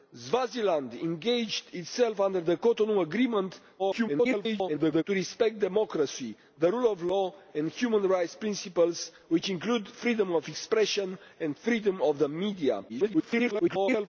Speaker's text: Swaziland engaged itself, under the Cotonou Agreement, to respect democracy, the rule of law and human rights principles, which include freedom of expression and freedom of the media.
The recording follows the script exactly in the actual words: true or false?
false